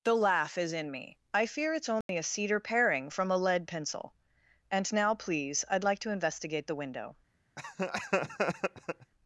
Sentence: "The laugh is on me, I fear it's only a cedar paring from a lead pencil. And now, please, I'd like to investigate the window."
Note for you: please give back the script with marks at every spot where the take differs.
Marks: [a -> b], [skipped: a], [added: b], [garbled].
"The laugh is [on -> in] me, I fear it's only a cedar paring from a lead pencil. And now, please, I'd like to investigate the window."